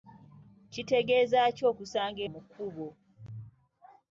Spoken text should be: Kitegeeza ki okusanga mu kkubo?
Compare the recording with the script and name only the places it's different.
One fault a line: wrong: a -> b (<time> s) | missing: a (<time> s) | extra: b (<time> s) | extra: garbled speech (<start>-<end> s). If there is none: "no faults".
no faults